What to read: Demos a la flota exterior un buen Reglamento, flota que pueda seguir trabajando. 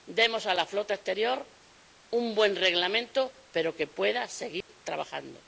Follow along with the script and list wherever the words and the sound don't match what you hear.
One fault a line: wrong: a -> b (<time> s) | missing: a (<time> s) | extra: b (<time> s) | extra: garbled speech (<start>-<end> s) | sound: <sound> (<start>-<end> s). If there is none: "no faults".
wrong: flota -> pero (3.5 s)
sound: dropout (4.6-4.7 s)